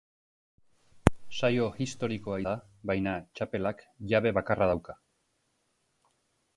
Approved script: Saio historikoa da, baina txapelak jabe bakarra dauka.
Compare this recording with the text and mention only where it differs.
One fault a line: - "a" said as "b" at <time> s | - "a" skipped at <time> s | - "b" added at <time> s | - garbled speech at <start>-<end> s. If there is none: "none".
none